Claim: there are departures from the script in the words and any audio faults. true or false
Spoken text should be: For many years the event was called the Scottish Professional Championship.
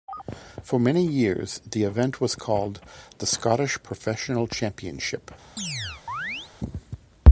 true